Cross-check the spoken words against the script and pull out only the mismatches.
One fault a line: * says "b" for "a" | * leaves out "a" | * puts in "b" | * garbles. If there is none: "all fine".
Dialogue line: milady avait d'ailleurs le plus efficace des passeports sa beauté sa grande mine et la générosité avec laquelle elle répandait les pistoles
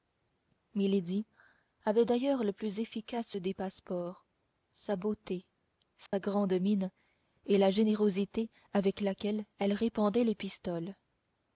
all fine